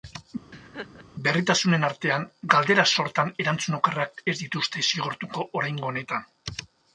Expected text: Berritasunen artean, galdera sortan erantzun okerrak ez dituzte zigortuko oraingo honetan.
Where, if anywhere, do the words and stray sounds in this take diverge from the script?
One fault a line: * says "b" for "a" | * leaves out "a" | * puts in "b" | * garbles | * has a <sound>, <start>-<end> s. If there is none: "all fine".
* has a laugh, 0.5-1.1 s